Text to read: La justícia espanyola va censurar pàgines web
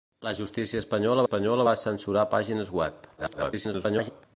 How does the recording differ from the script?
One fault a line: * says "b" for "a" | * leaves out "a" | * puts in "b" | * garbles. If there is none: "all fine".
* puts in "espanyola"
* garbles